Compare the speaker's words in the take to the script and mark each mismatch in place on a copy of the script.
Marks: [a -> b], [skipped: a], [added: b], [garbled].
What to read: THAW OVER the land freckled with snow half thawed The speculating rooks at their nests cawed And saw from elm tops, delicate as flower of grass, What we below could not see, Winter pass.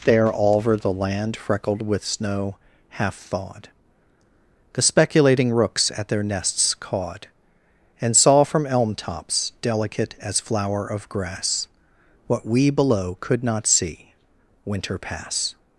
[THAW -> There all] OVER the land freckled with snow half thawed The speculating rooks at their nests cawed And saw from elm tops, delicate as flower of grass, What we below could not see, Winter pass.